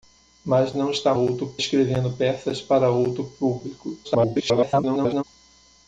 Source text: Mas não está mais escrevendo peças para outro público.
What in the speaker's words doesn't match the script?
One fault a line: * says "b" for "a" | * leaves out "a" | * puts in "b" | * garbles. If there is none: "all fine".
* says "outro" for "mais"
* garbles